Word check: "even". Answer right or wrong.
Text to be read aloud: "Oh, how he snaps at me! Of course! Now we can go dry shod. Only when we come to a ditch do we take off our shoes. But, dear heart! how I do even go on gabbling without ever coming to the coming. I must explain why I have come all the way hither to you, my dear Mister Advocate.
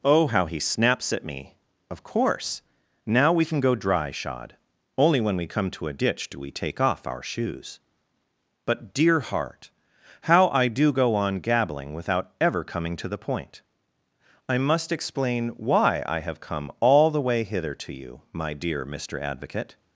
wrong